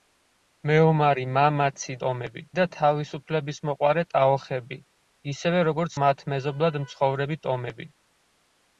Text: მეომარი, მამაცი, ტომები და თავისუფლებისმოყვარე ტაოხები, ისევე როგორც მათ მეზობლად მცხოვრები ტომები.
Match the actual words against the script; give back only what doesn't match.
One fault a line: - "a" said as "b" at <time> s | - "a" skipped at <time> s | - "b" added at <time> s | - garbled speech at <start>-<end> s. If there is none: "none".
none